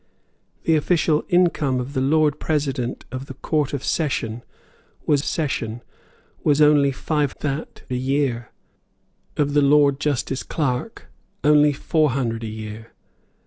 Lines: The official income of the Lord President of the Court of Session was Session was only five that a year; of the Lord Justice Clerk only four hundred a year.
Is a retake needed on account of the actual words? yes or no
no